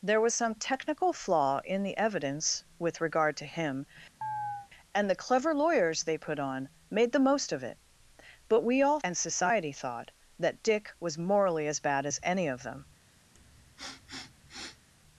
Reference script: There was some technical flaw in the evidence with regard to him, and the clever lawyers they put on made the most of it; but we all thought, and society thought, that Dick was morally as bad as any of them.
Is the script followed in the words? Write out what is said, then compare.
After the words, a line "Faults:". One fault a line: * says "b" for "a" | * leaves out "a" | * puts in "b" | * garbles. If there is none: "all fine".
There was some technical flaw in the evidence with regard to him, and the clever lawyers they put on made the most of it; but we all and society thought, that Dick was morally as bad as any of them.
Faults:
* leaves out "thought"